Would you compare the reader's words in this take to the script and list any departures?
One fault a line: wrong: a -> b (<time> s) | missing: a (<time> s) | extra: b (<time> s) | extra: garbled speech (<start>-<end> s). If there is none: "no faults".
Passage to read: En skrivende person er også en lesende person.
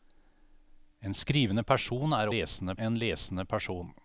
wrong: også -> lesende (2.3 s)